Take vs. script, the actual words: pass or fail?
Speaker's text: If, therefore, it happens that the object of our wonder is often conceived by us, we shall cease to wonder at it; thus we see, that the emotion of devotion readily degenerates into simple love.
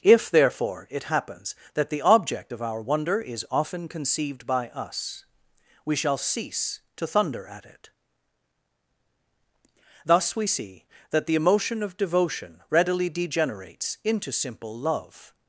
fail